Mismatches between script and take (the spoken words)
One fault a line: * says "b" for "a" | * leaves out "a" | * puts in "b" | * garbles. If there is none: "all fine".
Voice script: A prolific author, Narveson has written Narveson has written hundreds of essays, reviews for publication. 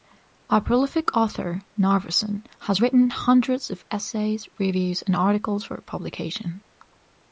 * leaves out "Narveson has written"
* puts in "and articles"